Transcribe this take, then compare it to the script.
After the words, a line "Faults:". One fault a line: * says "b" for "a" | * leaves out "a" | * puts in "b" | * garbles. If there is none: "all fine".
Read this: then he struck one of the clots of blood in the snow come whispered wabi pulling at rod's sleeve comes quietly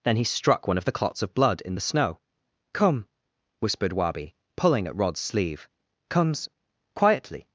then he struck one of the clots of blood in the snow come whispered wabi pulling at rod's sleeve comes quietly
Faults:
all fine